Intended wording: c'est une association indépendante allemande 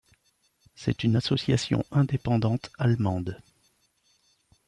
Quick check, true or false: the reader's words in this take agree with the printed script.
true